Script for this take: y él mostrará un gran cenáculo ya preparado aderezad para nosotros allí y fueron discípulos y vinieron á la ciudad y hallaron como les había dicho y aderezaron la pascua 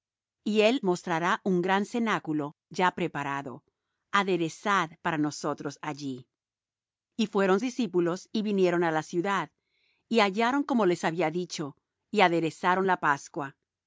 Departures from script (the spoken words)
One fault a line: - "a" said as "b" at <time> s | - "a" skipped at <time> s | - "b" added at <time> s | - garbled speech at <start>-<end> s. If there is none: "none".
none